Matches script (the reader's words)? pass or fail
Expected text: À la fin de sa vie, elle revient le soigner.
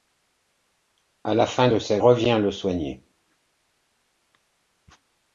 fail